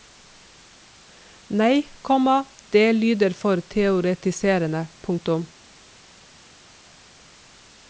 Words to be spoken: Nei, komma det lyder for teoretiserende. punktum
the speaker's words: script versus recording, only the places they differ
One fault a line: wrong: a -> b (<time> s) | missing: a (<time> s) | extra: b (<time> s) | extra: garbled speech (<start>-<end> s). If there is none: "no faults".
no faults